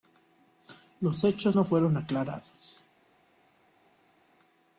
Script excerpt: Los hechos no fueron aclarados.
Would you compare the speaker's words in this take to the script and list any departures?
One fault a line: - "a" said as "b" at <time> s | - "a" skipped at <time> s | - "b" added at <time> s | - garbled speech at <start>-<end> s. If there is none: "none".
none